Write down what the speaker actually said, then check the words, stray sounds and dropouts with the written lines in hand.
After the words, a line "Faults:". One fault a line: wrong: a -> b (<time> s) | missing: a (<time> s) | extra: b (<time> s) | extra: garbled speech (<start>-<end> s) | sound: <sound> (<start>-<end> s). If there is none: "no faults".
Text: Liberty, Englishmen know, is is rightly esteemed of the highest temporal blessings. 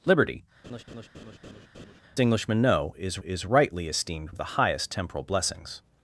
Liberty, Englishmen know, is is rightly esteemed of the highest temporal blessings.
Faults:
sound: laugh (0.6-2.0 s)